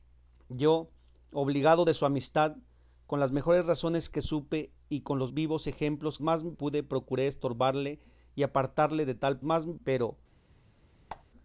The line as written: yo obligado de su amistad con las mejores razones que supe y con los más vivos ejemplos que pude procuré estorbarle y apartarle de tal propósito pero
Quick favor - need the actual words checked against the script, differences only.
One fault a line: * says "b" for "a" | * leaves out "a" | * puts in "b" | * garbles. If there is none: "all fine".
* leaves out "más"
* says "más" for "que"
* says "más" for "propósito"